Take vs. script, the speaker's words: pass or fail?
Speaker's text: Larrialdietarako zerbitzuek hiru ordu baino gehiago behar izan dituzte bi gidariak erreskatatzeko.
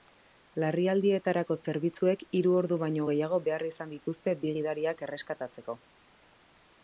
pass